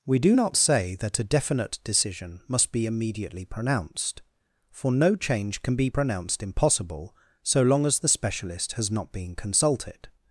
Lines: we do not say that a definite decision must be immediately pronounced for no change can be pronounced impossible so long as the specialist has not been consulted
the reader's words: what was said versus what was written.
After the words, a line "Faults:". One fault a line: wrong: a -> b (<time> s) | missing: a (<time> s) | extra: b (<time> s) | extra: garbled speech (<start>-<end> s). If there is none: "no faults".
we do not say that a definite decision must be immediately pronounced for no change can be pronounced impossible so long as the specialist has not been consulted
Faults:
no faults